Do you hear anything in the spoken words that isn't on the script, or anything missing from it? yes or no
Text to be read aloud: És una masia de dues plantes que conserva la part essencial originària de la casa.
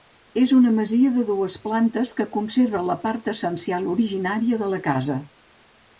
no